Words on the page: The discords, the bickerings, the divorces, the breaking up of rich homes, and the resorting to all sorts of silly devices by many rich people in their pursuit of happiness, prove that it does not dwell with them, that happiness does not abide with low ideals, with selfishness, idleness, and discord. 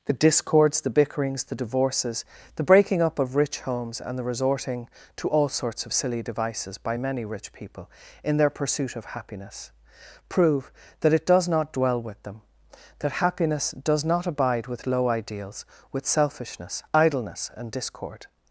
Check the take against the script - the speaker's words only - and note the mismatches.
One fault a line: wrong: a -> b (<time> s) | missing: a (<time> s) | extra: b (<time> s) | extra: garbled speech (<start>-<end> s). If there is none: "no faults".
no faults